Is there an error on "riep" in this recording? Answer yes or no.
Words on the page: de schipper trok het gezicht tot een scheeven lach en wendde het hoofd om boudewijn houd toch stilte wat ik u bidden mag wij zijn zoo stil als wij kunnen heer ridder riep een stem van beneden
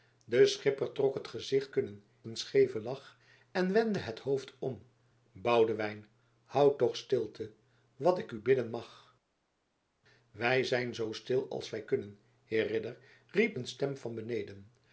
no